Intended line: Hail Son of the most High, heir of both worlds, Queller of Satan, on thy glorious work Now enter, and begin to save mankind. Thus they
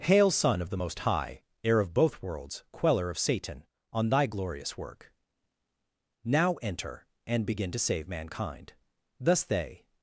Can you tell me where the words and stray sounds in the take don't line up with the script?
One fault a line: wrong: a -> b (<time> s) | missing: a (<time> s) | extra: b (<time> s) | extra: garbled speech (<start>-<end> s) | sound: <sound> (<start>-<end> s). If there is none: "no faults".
no faults